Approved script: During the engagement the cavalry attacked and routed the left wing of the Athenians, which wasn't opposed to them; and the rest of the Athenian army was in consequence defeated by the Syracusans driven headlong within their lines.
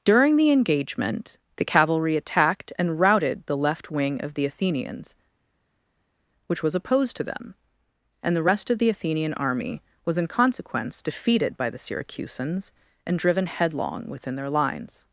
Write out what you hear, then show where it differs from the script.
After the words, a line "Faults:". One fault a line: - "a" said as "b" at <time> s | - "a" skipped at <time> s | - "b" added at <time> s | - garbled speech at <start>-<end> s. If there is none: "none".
During the engagement the cavalry attacked and routed the left wing of the Athenians, which was opposed to them; and the rest of the Athenian army was in consequence defeated by the Syracusans and driven headlong within their lines.
Faults:
- "wasn't" said as "was" at 6.6 s
- "and" added at 13.1 s